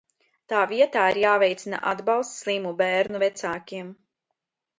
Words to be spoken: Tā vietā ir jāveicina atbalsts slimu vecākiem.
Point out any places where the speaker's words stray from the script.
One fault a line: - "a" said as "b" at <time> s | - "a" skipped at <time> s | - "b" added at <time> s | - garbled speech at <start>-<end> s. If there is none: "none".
- "bērnu" added at 2.8 s